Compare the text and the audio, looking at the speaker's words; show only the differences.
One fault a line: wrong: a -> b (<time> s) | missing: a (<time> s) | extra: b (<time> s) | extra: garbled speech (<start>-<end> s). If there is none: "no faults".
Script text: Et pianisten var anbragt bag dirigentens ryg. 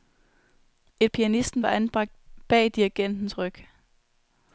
no faults